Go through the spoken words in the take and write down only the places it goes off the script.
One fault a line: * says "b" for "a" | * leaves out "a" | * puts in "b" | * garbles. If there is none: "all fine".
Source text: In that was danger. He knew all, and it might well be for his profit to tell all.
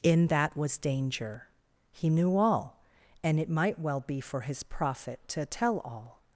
all fine